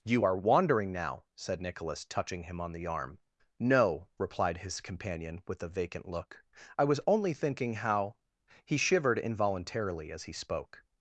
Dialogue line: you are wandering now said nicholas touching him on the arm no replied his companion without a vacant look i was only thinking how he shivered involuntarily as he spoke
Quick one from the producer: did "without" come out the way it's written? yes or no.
no